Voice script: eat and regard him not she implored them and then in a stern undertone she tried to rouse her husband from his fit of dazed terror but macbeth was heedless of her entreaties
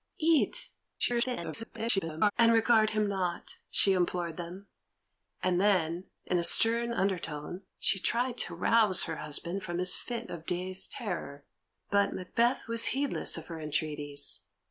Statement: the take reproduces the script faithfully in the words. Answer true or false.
false